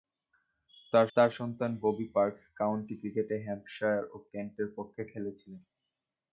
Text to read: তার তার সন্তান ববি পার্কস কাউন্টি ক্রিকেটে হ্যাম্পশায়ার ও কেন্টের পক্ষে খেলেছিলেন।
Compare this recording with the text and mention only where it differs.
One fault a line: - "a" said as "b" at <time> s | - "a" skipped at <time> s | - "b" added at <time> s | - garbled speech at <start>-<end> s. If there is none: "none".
none